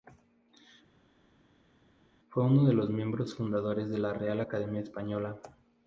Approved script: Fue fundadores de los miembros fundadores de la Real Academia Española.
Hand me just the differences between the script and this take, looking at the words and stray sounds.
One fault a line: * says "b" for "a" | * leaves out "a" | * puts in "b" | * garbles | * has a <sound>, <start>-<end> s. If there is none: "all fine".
* says "uno" for "fundadores"